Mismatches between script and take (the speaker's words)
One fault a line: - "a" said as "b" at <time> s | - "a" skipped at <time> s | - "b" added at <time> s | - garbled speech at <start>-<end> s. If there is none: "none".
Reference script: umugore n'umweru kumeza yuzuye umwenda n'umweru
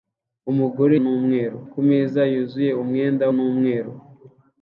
none